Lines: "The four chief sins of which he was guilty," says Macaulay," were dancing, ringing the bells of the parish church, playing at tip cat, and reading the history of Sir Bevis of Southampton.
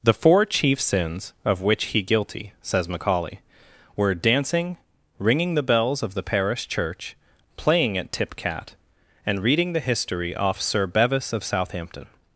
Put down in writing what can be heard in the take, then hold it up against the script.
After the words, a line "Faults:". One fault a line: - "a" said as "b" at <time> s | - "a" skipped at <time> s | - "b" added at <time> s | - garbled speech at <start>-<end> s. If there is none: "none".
"The four chief sins of which he guilty," says Macaulay," were dancing, ringing the bells of the parish church, playing at tip cat, and reading the history off Sir Bevis of Southampton.
Faults:
- "was" skipped at 2.0 s
- "of" said as "off" at 10.3 s